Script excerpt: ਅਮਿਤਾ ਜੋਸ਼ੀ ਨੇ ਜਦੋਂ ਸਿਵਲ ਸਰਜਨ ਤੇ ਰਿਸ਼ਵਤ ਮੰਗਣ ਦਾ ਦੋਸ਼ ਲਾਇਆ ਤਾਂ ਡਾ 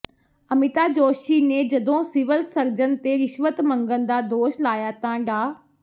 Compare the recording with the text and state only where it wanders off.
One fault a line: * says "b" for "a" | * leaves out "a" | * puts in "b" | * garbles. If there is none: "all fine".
all fine